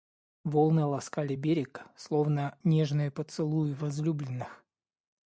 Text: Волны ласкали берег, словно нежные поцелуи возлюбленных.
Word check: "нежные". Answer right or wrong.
right